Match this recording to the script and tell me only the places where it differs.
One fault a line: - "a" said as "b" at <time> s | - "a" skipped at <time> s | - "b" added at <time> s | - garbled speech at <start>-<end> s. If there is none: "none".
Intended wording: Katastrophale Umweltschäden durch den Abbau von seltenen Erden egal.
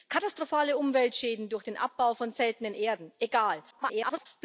- garbled speech at 3.7-4.3 s